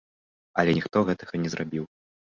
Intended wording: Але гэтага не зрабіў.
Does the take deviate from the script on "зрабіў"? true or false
false